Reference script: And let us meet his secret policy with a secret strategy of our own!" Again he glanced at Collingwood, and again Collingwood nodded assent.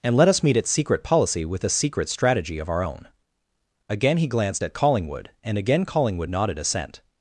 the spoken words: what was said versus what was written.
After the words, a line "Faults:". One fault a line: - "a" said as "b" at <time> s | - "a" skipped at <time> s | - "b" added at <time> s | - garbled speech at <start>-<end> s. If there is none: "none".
And let us meet its secret policy with a secret strategy of our own!" Again he glanced at Collingwood, and again Collingwood nodded assent.
Faults:
- "his" said as "its" at 0.6 s